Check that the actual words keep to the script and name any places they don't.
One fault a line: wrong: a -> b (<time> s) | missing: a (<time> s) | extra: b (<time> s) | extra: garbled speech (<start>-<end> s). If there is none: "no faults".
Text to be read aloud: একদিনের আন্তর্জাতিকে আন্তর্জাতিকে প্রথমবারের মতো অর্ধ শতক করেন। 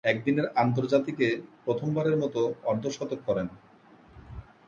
missing: আন্তর্জাতিকে (1.3 s)